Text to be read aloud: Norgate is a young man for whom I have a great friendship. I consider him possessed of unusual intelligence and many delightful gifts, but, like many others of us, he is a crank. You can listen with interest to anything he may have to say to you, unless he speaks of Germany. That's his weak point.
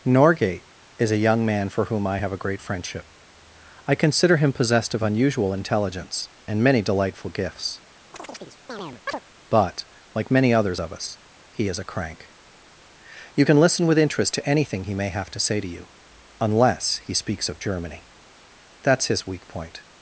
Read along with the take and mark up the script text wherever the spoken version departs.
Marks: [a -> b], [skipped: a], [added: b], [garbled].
Norgate is a young man for whom I have a great friendship. I consider him possessed of unusual intelligence and many delightful gifts, but, like many others of us, he is a crank. You can listen with interest to anything he may have to say to you, unless he speaks of Germany. That's his weak point.